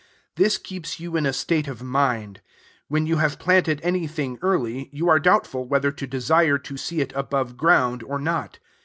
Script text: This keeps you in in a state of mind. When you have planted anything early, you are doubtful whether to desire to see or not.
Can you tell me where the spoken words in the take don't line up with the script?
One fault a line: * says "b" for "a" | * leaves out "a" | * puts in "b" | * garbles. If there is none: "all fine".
* leaves out "in"
* puts in "it above ground"